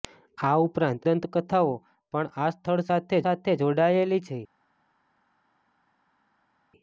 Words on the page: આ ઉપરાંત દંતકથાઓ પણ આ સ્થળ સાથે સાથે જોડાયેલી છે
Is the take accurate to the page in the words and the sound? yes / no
yes